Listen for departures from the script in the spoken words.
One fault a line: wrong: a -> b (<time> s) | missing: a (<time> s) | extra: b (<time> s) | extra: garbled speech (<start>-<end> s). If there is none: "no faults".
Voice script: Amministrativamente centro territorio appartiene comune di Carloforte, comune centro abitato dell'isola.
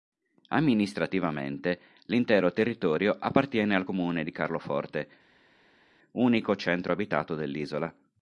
wrong: centro -> l'intero (2.0 s)
extra: al (3.8 s)
wrong: comune -> unico (6.1 s)